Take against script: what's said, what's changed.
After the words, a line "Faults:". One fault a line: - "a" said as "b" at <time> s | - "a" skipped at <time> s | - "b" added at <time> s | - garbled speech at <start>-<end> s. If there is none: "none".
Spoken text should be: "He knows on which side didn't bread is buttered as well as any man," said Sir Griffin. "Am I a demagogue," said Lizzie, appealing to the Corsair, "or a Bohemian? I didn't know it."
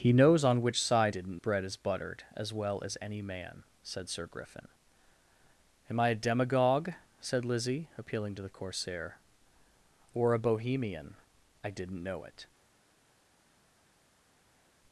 "He knows on which side didn't bread is buttered as well as any man," said Sir Griffin. "Am I a demagogue," said Lizzie, appealing to the Corsair, "or a Bohemian? I didn't know it."
Faults:
none